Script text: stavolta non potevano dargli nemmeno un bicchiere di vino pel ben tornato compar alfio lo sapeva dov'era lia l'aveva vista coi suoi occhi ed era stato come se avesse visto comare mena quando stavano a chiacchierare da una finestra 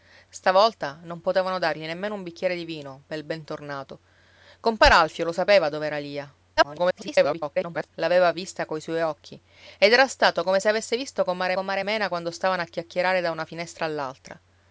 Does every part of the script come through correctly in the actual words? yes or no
no